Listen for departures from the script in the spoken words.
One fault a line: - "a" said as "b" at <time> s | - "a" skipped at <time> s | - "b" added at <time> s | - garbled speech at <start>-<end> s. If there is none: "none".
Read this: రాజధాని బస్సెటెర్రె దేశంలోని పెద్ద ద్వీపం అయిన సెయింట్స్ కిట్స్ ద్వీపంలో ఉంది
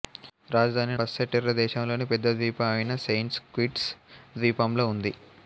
none